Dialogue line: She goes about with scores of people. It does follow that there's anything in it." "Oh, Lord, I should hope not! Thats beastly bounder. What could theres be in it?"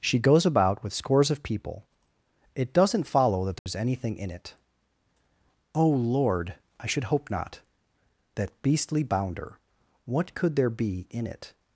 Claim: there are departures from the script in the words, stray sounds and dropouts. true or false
true